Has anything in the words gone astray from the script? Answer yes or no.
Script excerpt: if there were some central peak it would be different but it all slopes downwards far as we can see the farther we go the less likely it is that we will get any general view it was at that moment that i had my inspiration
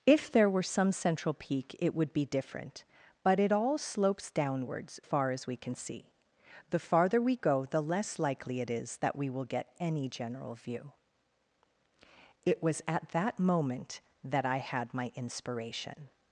no